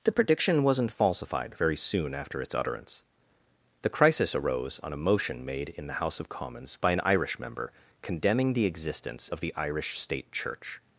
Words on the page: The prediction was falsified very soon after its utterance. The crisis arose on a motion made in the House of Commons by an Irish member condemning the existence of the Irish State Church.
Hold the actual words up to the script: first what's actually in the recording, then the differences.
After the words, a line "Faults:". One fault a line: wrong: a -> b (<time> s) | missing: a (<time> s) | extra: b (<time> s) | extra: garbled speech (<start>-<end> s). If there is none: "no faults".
The prediction wasn't falsified very soon after its utterance. The crisis arose on a motion made in the House of Commons by an Irish member condemning the existence of the Irish State Church.
Faults:
wrong: was -> wasn't (0.6 s)